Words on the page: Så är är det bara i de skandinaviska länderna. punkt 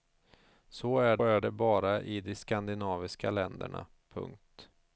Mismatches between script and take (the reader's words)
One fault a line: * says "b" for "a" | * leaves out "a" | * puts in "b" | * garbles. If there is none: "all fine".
all fine